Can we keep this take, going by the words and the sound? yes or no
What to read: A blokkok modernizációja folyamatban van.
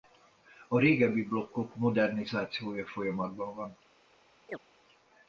no